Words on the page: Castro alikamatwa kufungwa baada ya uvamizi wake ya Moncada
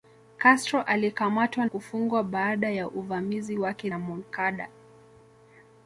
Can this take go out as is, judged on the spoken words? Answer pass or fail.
pass